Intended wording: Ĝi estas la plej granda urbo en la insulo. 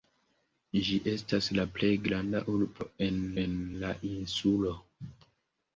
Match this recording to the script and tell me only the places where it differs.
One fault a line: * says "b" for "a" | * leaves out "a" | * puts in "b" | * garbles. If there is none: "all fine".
* puts in "en"